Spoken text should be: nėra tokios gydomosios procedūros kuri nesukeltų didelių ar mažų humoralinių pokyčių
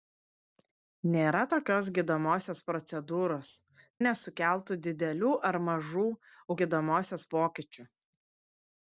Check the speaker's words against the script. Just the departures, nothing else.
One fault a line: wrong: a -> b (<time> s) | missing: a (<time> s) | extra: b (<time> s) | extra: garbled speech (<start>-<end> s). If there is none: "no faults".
missing: kuri (3.5 s)
wrong: humoralinių -> gydomosios (6.6 s)